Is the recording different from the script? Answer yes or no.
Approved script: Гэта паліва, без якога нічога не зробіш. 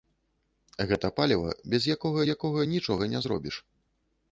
yes